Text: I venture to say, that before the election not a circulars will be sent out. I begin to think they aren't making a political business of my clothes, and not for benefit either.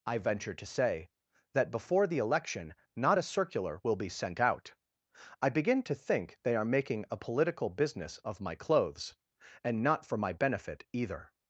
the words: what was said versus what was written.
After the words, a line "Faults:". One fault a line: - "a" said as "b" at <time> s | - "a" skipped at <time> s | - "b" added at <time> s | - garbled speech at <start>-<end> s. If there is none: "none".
I venture to say, that before the election not a circular will be sent out. I begin to think they are making a political business of my clothes, and not for my benefit either.
Faults:
- "circulars" said as "circular" at 3.2 s
- "aren't" said as "are" at 6.5 s
- "my" added at 10.2 s